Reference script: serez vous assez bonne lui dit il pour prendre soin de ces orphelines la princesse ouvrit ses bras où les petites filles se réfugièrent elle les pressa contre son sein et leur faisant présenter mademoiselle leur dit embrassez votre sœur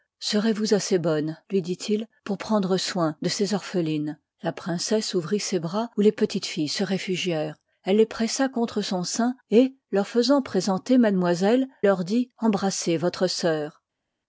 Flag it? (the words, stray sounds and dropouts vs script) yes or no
no